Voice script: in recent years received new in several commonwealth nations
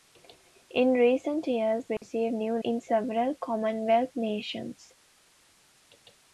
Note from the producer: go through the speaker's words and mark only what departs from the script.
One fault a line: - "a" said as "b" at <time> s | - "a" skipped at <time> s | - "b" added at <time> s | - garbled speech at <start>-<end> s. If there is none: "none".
none